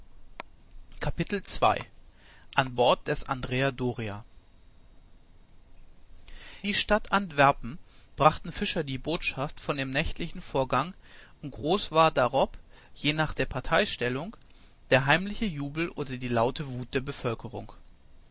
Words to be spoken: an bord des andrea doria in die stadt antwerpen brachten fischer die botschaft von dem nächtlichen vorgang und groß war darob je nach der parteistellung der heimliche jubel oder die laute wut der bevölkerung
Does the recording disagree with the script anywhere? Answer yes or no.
yes